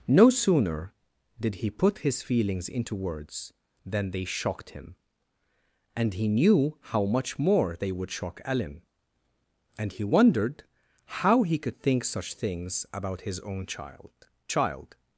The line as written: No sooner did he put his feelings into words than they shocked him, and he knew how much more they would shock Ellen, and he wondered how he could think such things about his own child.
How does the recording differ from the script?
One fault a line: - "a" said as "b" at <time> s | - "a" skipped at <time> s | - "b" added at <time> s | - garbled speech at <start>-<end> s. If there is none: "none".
- "child" added at 14.5 s